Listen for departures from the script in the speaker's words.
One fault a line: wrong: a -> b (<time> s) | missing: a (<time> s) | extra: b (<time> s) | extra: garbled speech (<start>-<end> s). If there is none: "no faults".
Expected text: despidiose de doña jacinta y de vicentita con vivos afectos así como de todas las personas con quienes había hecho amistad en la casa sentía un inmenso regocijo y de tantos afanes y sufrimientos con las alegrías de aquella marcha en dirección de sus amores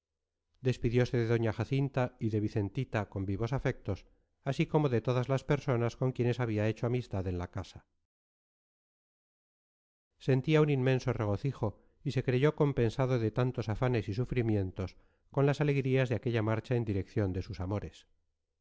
extra: se creyó compensado (12.1 s)